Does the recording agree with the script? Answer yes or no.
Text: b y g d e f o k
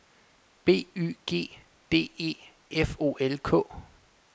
no